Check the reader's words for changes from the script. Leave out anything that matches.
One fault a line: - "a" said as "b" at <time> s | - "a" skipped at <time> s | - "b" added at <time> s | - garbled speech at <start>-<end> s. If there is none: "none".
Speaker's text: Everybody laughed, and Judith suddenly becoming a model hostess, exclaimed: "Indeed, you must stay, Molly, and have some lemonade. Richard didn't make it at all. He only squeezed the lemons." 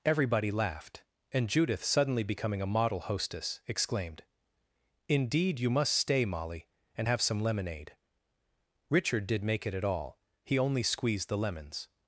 - "didn't" said as "did" at 9.3 s